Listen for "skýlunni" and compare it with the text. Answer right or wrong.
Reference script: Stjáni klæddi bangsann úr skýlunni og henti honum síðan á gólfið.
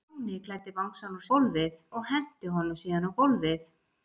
wrong